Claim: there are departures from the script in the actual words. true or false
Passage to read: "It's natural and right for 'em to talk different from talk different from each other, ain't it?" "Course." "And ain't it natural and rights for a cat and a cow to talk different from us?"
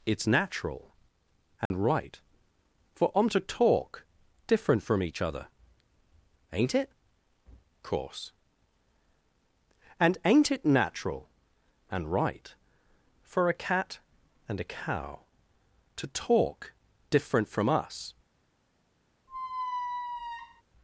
true